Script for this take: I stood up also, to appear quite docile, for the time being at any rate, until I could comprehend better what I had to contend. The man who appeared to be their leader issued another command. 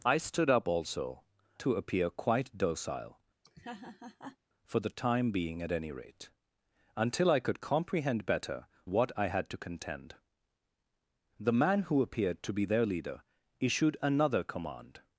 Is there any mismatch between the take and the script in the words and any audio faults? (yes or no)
yes